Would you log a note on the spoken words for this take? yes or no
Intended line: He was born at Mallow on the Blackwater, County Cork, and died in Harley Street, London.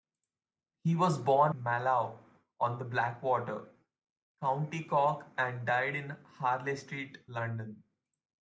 yes